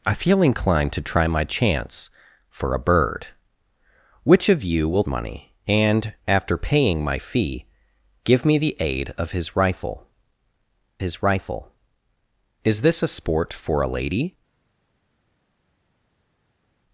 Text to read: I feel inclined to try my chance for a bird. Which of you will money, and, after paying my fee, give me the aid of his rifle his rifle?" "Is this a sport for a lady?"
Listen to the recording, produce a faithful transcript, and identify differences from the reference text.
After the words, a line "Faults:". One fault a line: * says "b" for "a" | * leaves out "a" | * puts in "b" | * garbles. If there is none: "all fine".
I feel inclined to try my chance for a bird. Which of you will money, and, after paying my fee, give me the aid of his rifle his rifle?" "Is this a sport for a lady?"
Faults:
all fine